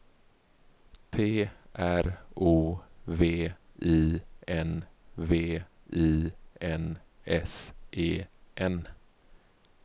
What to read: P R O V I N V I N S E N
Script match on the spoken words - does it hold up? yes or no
yes